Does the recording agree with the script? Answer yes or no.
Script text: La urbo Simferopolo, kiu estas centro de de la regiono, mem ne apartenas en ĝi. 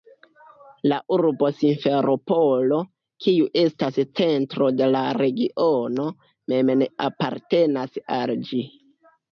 no